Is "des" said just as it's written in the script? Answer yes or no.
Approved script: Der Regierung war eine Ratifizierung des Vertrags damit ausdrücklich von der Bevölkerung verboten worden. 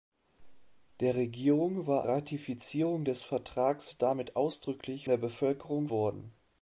yes